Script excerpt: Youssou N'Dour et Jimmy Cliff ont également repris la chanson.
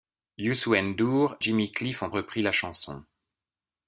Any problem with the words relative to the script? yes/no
yes